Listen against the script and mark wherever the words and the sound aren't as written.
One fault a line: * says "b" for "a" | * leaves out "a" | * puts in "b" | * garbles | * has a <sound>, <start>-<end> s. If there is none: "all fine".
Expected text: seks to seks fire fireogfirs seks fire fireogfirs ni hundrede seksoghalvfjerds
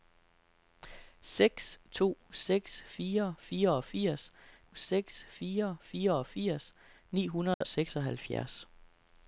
* has a dropout, 7.5-7.6 s